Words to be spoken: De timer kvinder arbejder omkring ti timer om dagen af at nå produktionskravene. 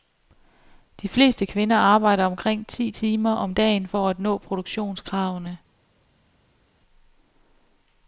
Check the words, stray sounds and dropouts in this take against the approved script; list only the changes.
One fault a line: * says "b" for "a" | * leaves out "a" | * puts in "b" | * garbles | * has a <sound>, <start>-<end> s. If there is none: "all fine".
* says "fleste" for "timer"
* says "for" for "af"